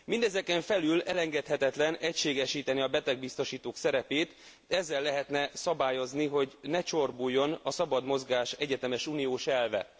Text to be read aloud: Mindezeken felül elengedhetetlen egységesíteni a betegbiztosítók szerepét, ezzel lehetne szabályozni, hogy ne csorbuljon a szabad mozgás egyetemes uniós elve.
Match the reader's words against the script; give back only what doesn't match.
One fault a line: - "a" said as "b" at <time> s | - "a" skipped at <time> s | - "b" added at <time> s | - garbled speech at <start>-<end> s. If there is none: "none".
none